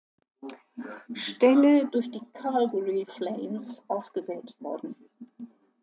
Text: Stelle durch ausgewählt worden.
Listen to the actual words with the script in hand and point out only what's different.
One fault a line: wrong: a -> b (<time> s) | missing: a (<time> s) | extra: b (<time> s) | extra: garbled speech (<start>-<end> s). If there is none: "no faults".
extra: die Calgary Flames (2.1 s)